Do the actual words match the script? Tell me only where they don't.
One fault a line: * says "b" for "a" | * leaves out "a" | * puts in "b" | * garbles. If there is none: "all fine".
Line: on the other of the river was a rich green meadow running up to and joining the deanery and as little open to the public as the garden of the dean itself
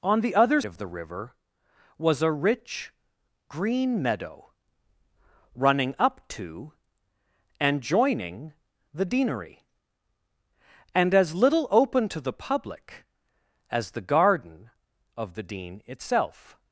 all fine